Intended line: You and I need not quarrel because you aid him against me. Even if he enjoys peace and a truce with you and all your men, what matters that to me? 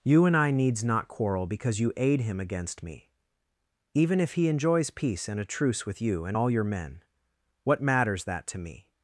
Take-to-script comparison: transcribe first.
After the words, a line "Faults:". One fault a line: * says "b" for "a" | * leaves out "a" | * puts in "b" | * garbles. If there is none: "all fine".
You and I needs not quarrel because you aid him against me. Even if he enjoys peace and a truce with you and all your men, what matters that to me?
Faults:
* says "needs" for "need"